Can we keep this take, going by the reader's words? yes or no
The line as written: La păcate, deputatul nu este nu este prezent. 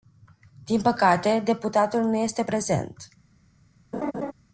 no